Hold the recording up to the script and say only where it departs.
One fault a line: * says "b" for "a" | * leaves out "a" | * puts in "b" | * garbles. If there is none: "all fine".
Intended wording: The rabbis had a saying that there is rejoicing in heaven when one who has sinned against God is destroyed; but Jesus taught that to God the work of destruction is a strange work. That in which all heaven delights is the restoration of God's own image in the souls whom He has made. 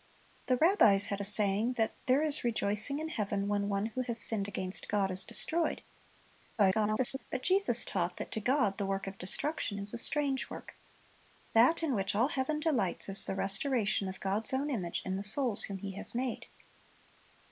* garbles